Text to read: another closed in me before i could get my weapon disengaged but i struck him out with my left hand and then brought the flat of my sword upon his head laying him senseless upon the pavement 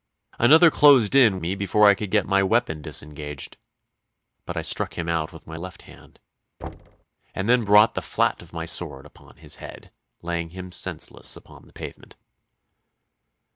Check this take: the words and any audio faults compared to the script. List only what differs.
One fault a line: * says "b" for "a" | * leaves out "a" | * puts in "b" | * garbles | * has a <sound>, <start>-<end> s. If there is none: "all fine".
* has a thud, 6.6-7.1 s